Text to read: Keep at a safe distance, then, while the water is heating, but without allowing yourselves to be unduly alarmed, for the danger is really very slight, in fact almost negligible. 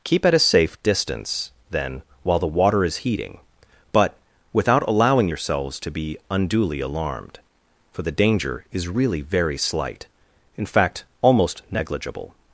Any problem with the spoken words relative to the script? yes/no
no